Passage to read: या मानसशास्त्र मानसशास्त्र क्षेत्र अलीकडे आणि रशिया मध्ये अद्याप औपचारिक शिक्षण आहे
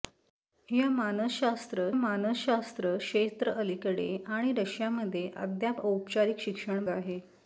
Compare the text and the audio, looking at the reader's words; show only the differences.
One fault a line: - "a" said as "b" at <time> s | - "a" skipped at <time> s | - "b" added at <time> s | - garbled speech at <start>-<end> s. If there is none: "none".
none